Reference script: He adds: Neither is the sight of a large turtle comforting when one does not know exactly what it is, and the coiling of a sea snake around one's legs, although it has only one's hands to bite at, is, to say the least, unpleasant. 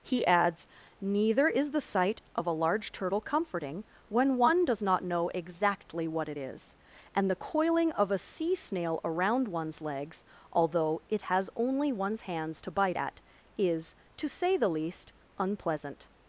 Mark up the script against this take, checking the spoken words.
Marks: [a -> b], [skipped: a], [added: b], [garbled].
He adds: Neither is the sight of a large turtle comforting when one does not know exactly what it is, and the coiling of a sea [snake -> snail] around one's legs, although it has only one's hands to bite at, is, to say the least, unpleasant.